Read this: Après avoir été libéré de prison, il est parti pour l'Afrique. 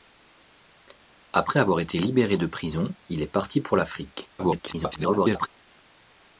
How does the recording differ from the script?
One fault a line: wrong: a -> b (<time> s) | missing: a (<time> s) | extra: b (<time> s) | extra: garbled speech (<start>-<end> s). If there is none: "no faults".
extra: garbled speech (4.4-5.5 s)